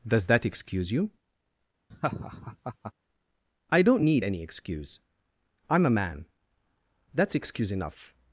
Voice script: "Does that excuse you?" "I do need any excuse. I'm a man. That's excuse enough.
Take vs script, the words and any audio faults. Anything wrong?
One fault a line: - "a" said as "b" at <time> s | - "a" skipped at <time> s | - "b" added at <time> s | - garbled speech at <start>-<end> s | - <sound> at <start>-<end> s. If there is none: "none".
- laugh at 1.9-2.9 s
- "do" said as "don't" at 3.8 s